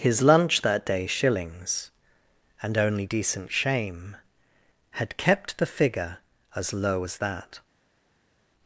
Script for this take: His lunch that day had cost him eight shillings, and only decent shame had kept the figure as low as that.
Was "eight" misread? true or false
true